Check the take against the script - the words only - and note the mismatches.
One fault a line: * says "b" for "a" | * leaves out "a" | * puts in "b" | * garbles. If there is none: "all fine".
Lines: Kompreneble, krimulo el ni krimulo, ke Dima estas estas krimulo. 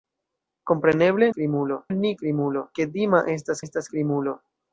all fine